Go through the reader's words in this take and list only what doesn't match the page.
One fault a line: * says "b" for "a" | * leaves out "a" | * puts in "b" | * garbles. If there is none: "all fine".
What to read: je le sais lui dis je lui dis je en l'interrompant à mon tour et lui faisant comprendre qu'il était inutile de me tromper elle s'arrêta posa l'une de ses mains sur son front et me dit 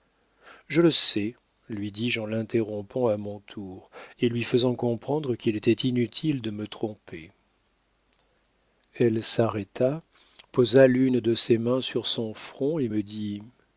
* leaves out "lui dis je"